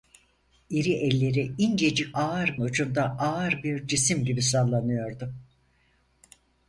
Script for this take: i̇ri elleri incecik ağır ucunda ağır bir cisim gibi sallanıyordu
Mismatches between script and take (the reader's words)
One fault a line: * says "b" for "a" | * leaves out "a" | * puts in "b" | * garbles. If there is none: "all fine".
all fine